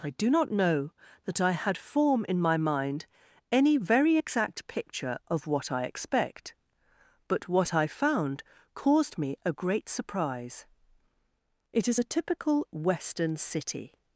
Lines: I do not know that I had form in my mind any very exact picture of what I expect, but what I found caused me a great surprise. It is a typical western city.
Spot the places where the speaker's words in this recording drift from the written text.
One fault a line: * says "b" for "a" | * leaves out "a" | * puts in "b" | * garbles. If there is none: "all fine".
all fine